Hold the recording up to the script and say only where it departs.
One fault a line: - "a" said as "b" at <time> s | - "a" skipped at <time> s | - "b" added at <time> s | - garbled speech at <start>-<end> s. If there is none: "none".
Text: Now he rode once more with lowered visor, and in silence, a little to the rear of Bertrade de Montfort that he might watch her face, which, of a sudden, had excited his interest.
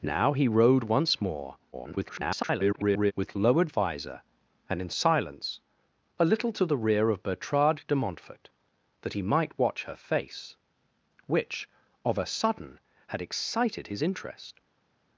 - garbled speech at 1.7-3.1 s